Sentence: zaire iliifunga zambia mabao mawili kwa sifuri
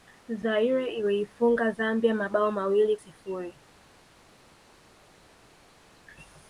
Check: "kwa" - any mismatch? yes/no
yes